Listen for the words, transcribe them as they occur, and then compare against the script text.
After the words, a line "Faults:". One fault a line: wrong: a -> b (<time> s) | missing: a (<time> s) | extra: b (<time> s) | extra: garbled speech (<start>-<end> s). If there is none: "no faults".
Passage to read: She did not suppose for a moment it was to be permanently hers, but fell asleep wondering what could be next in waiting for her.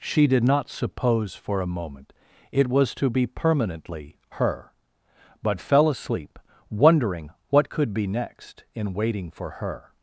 She did not suppose for a moment it was to be permanently her, but fell asleep wondering what could be next in waiting for her.
Faults:
wrong: hers -> her (4.4 s)